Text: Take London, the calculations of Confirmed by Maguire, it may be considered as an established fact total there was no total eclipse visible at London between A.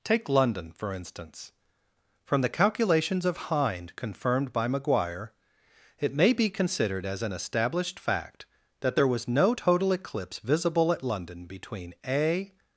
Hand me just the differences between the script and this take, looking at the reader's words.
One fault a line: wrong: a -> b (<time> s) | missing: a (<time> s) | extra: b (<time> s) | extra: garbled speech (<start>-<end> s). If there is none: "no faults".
extra: for instance From (0.7 s)
extra: Hind (3.4 s)
wrong: total -> that (8.8 s)